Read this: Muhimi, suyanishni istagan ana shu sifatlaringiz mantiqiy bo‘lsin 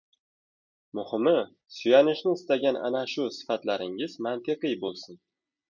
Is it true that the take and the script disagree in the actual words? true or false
false